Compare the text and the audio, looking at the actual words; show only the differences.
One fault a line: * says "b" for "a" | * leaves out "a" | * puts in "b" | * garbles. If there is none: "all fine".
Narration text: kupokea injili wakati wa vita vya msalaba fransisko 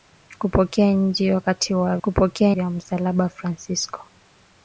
* says "kupokea" for "vita"